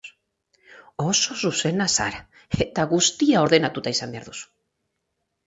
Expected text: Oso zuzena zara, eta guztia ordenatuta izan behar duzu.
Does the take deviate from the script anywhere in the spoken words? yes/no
no